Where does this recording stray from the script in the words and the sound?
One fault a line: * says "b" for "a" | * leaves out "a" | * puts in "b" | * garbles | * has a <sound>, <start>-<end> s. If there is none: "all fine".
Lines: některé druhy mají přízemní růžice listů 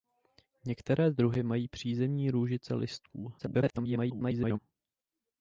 * garbles